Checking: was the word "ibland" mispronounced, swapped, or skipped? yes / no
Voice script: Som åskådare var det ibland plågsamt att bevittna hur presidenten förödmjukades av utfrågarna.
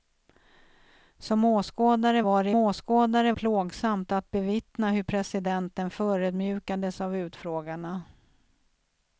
yes